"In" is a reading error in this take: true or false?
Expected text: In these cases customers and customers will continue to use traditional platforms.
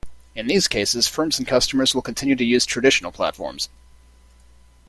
false